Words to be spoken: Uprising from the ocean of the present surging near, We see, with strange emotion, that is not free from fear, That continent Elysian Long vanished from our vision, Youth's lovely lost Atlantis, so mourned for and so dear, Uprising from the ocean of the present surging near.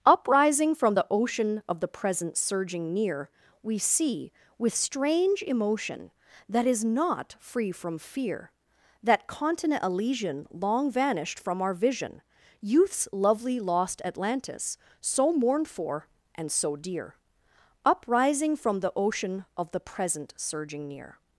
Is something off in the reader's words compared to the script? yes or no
no